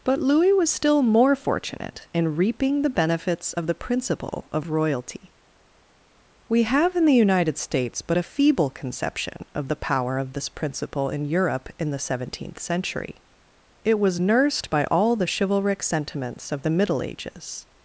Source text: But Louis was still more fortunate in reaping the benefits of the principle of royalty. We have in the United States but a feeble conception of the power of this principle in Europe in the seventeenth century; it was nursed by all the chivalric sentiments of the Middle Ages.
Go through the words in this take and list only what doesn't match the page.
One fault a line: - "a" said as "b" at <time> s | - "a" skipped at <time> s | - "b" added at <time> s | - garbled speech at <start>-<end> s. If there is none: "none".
none